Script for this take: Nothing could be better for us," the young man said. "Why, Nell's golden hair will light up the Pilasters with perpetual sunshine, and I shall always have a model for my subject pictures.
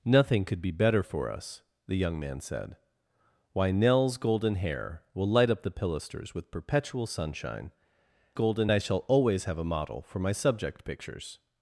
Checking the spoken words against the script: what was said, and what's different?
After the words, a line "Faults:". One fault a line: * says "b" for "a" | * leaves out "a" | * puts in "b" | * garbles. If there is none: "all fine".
Nothing could be better for us," the young man said. "Why, Nell's golden hair will light up the Pilasters with perpetual sunshine, golden I shall always have a model for my subject pictures.
Faults:
* says "golden" for "and"